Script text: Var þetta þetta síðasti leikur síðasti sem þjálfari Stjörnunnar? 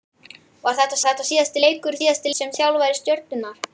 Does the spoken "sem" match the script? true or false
true